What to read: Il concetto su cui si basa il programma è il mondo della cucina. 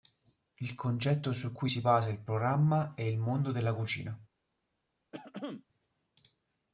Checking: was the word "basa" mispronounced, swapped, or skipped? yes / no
no